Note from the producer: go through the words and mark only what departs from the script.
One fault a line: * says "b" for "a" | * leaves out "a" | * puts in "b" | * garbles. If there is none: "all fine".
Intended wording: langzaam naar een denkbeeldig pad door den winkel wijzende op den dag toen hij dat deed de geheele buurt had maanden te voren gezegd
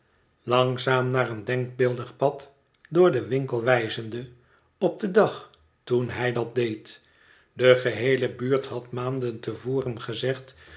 all fine